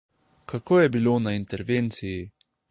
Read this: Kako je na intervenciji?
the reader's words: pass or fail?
fail